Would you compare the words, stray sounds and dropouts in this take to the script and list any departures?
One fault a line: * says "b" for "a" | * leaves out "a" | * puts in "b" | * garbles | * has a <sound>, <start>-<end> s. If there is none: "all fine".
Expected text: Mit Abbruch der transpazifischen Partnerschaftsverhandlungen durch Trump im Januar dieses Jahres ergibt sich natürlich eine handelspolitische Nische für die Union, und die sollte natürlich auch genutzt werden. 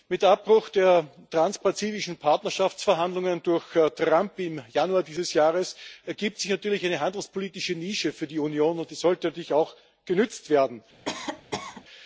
* has a cough, 11.0-11.8 s